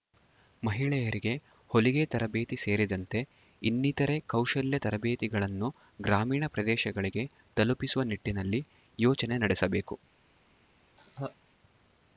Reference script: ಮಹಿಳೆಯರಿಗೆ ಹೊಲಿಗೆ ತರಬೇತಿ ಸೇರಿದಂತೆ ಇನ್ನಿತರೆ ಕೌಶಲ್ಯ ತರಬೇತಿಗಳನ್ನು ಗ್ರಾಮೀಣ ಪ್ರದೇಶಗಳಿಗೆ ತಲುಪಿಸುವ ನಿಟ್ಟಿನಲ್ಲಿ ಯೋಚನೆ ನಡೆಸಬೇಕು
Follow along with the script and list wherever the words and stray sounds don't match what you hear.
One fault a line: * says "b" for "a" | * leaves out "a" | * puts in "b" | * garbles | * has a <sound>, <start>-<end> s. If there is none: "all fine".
* has a laugh, 11.0-11.4 s